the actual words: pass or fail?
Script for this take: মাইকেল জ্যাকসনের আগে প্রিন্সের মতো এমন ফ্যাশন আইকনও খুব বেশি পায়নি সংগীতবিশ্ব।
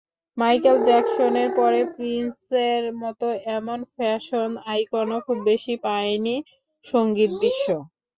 fail